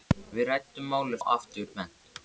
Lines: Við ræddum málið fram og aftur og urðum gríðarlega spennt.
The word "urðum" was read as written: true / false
false